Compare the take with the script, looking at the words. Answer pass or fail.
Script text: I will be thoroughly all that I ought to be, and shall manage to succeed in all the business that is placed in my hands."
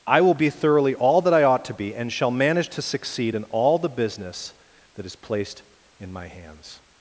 pass